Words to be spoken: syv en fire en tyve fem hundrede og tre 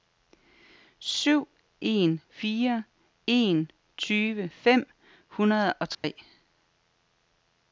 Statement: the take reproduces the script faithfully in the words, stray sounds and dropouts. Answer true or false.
false